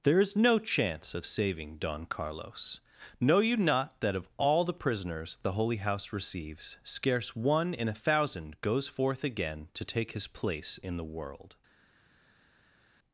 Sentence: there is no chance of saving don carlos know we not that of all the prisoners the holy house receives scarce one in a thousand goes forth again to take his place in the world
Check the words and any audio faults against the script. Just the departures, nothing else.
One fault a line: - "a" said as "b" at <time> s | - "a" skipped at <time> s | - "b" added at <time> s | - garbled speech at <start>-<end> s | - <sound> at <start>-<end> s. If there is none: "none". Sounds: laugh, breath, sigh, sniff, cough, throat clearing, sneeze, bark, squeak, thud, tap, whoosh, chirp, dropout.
- "we" said as "you" at 3.4 s